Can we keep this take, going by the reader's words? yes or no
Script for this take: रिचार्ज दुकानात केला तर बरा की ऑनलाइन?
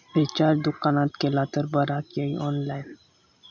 yes